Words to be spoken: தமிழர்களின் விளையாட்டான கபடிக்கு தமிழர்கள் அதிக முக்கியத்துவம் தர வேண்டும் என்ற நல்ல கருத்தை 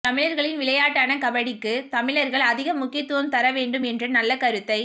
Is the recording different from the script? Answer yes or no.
no